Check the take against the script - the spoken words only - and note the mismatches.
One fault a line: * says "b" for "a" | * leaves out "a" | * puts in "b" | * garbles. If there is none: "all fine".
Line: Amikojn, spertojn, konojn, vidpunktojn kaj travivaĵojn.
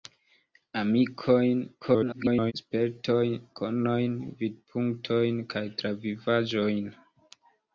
* garbles